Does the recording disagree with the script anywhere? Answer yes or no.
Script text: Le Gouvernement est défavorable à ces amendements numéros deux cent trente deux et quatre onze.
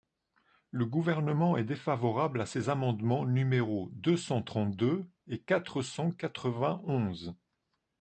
yes